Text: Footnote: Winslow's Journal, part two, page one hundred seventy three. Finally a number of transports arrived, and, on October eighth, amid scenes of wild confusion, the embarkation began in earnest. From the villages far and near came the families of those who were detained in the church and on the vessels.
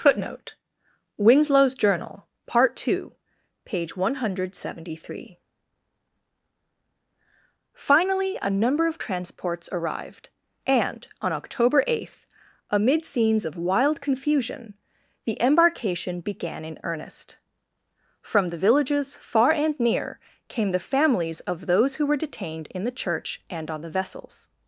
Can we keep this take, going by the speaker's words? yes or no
yes